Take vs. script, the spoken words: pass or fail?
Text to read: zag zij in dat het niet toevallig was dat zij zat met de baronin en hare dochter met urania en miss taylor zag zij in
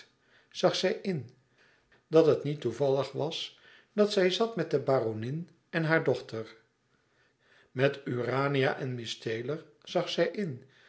pass